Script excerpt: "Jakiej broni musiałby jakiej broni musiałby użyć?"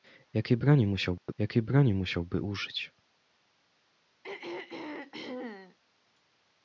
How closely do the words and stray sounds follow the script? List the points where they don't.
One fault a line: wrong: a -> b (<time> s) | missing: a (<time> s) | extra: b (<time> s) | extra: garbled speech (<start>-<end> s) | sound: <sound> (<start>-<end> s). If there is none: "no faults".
sound: dropout (1.2-1.3 s)
sound: throat clearing (4.2-5.8 s)